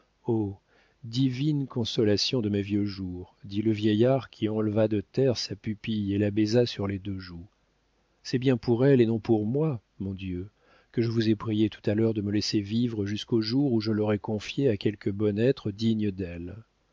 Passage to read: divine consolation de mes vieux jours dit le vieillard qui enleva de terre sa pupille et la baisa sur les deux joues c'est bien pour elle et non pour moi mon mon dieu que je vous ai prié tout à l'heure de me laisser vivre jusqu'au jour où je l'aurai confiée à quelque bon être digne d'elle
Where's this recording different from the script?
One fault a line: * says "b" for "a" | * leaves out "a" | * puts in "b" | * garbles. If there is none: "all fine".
* leaves out "mon"